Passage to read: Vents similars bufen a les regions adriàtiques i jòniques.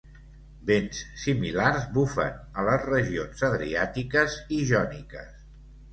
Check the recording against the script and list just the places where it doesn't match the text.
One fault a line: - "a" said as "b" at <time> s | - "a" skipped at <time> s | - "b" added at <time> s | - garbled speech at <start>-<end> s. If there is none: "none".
none